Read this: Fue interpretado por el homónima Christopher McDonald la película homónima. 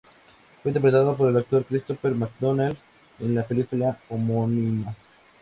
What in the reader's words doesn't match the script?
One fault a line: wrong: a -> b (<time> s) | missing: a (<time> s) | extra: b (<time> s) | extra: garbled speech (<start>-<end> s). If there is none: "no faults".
wrong: homónima -> actor (1.4 s)
extra: en (3.2 s)